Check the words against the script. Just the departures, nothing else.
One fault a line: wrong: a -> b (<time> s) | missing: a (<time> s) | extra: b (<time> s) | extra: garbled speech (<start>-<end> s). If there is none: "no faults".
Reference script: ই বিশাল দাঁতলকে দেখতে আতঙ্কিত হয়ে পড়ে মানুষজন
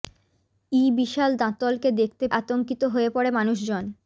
no faults